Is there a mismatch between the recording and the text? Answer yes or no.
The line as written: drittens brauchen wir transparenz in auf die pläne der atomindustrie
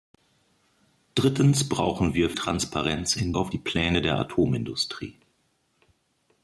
no